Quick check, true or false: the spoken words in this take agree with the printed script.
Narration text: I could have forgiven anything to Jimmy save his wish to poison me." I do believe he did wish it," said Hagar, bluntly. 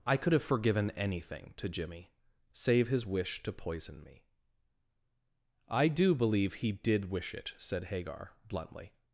true